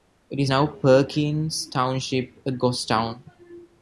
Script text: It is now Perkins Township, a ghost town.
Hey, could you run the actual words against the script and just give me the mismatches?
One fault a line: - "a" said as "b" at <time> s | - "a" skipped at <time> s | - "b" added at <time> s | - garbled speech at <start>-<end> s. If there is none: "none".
none